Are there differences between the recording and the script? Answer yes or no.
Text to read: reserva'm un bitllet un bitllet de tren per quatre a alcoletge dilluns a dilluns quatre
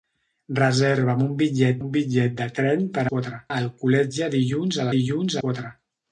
no